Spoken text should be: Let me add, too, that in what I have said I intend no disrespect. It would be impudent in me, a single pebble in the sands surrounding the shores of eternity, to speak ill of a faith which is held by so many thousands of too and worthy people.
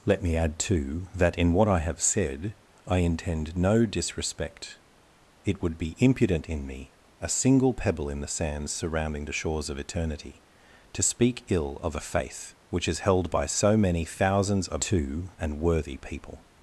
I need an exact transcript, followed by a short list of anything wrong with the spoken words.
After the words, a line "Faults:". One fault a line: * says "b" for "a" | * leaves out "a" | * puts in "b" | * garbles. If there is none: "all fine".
Let me add, too, that in what I have said I intend no disrespect. It would be impudent in me, a single pebble in the sands surrounding the shores of eternity, to speak ill of a faith which is held by so many thousands of too and worthy people.
Faults:
all fine